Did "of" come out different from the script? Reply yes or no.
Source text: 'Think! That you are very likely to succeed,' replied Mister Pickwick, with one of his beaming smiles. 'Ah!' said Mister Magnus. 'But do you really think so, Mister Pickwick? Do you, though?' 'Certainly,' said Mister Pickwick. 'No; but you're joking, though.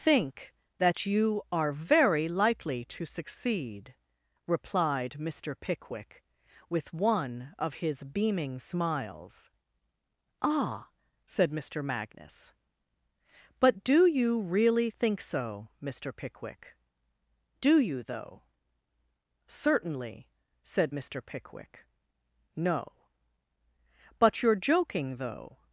no